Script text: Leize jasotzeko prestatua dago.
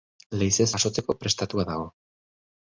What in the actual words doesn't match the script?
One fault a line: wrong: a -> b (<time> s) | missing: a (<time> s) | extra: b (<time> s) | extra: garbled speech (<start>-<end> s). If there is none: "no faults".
no faults